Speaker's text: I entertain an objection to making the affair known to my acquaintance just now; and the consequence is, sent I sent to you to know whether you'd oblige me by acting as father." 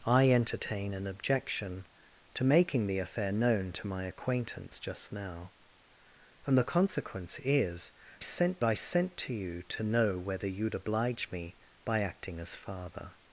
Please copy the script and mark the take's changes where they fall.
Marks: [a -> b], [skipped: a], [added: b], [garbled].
I entertain an objection to making the affair known to my acquaintance just now; and the consequence is, sent I sent to you to know whether you'd oblige me by acting as father."